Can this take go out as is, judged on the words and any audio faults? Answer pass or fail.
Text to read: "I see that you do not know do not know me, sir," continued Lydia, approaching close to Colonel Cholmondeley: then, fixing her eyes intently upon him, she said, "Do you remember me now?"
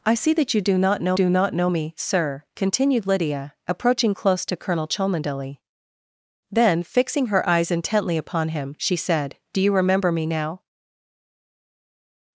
pass